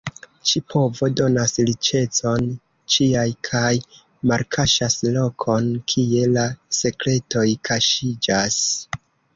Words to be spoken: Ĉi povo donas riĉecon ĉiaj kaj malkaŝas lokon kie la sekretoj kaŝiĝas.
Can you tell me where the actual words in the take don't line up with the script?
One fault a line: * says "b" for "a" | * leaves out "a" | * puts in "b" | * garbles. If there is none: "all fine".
all fine